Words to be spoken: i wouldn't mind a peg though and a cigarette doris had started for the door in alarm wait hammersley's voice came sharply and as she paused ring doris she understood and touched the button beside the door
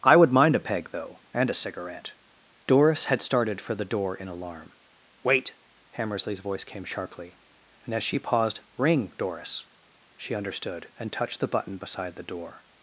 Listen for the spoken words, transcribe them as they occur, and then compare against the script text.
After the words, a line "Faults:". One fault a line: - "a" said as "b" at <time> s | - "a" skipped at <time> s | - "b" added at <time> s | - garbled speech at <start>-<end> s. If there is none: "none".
i would mind a peg though and a cigarette doris had started for the door in alarm wait hammersley's voice came sharply and as she paused ring doris she understood and touched the button beside the door
Faults:
- "wouldn't" said as "would" at 0.1 s